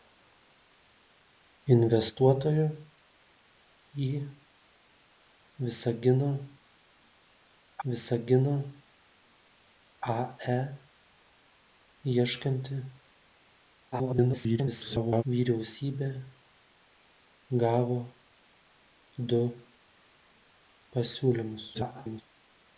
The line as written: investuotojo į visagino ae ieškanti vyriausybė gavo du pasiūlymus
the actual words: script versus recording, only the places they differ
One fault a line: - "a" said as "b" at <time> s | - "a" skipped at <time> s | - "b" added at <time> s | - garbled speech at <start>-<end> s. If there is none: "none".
- "visagino" added at 7.9 s
- garbled speech at 13.9-15.2 s
- garbled speech at 21.7-22.2 s